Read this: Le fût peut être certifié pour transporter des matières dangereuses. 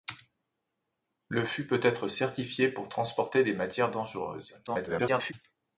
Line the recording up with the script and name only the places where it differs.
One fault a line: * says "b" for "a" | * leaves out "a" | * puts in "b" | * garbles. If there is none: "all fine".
* garbles